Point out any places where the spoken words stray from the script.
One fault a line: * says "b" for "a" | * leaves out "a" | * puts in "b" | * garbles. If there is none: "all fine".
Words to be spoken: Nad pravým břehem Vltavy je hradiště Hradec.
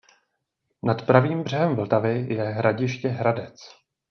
all fine